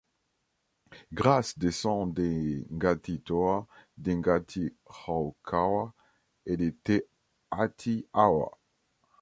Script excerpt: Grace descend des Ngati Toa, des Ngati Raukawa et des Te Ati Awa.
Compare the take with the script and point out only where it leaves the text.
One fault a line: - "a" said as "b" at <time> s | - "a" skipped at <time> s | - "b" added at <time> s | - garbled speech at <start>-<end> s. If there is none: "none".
none